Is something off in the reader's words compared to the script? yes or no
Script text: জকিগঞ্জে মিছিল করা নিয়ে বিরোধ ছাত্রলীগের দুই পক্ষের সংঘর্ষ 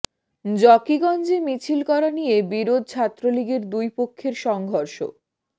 no